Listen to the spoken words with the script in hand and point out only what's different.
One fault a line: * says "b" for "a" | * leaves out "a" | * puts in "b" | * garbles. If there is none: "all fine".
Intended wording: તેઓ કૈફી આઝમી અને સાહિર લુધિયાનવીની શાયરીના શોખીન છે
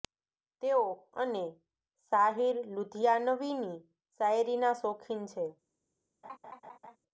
* leaves out "કૈફી આઝમી"